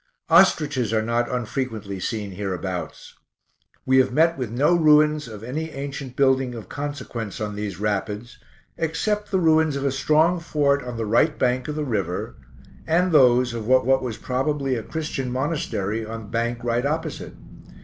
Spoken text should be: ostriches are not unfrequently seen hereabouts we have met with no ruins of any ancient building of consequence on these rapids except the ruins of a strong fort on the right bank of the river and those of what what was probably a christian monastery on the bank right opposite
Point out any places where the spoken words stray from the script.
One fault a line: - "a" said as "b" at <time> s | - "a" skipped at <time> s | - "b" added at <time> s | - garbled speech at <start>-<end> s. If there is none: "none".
none